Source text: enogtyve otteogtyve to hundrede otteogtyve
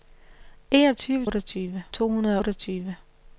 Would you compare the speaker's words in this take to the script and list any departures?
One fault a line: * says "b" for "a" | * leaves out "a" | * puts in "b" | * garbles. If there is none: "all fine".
all fine